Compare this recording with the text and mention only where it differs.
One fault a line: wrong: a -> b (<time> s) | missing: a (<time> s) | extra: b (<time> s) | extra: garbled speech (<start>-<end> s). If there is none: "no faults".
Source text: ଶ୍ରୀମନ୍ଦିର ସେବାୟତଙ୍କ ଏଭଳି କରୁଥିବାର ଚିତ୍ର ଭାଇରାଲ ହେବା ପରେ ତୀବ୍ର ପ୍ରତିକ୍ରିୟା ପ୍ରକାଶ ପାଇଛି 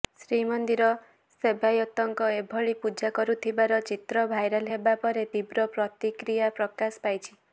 extra: ପୂଜା (2.8 s)